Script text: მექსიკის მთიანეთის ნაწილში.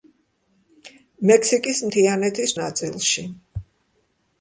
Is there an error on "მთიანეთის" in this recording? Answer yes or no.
no